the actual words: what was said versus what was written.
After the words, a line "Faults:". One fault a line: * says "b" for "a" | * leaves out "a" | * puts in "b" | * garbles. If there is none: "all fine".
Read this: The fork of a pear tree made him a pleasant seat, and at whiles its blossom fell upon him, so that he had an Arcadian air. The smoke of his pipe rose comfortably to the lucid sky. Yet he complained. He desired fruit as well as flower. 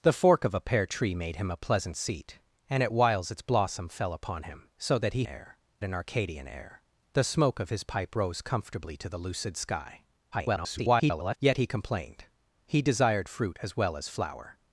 The fork of a pear tree made him a pleasant seat, and at whiles its blossom fell upon him, so that he air an Arcadian air. The smoke of his pipe rose comfortably to the lucid sky. [garbled] Yet he complained. He desired fruit as well as flower.
Faults:
* says "air" for "had"
* garbles